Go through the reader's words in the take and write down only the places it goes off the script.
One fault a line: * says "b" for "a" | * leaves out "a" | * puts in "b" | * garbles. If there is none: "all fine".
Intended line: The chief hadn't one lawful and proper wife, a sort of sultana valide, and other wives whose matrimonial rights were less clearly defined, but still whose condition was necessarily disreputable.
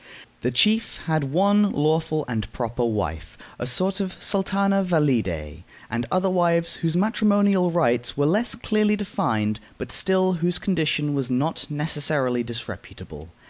* says "had" for "hadn't"
* puts in "not"